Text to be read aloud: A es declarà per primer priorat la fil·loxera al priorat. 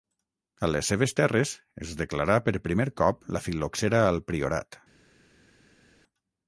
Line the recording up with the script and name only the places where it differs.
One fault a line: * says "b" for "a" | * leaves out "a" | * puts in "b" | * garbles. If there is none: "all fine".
* puts in "les seves terres"
* says "cop" for "priorat"